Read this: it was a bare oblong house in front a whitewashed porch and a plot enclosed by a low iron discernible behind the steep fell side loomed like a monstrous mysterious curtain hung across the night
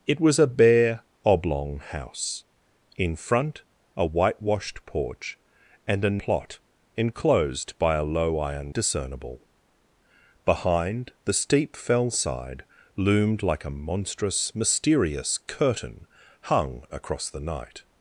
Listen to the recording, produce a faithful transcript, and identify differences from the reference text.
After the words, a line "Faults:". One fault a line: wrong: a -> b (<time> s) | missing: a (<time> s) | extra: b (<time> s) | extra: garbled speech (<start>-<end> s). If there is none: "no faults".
it was a bare oblong house in front a whitewashed porch and a plot enclosed by a low iron discernible behind the steep fell side loomed like a monstrous mysterious curtain hung across the night
Faults:
no faults